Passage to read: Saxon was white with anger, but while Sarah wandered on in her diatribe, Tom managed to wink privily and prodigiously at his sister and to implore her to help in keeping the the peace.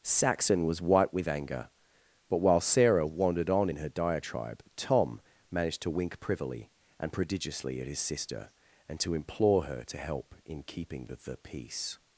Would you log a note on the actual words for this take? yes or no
no